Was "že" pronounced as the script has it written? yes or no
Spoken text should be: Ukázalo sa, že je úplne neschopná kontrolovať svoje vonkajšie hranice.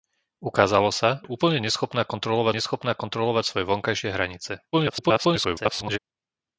no